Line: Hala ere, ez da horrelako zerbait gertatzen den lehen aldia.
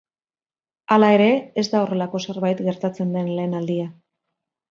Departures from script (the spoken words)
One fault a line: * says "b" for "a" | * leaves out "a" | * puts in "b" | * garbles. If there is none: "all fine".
all fine